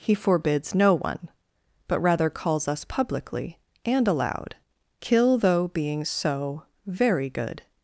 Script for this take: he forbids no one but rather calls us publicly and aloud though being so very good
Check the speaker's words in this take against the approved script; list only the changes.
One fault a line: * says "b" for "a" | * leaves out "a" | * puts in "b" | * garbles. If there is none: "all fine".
* puts in "kill"